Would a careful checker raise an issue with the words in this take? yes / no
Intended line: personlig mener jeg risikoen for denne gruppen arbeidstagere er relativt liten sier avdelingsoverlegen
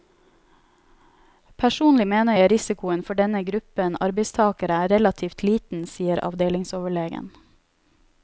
no